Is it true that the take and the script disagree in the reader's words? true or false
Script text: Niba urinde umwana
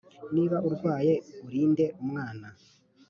true